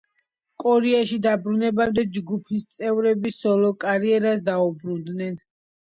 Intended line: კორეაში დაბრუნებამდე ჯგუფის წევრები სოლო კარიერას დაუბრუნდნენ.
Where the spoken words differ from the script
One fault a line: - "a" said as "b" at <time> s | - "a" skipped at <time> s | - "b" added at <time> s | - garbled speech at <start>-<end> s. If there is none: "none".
none